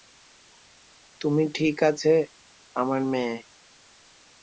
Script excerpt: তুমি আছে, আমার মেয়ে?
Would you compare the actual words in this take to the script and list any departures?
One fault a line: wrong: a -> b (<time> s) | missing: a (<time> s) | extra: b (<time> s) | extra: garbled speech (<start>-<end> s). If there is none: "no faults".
extra: ঠিক (1.6 s)